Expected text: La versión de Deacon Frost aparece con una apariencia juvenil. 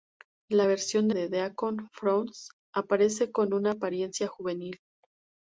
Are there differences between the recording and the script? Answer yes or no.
no